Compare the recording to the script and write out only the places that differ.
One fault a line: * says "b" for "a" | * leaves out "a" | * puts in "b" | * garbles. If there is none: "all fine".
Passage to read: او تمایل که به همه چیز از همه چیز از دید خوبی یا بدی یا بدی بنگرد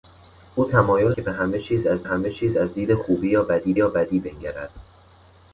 all fine